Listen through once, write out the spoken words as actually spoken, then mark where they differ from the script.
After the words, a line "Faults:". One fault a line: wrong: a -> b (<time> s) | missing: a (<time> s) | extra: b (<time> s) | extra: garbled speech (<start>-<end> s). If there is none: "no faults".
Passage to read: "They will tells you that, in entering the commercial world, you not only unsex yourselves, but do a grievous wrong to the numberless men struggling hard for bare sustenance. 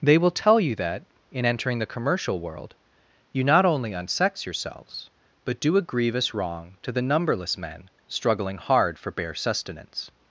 "They will tell you that, in entering the commercial world, you not only unsex yourselves, but do a grievous wrong to the numberless men struggling hard for bare sustenance.
Faults:
wrong: tells -> tell (0.3 s)